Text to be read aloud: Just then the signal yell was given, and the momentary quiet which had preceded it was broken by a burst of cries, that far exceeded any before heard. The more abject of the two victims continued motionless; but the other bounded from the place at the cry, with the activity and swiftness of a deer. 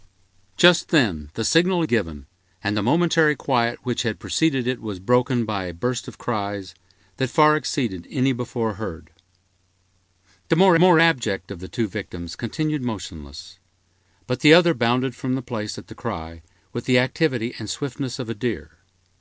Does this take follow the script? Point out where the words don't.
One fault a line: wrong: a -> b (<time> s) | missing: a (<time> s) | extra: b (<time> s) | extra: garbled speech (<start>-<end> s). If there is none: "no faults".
missing: yell was (1.9 s)
extra: more (10.8 s)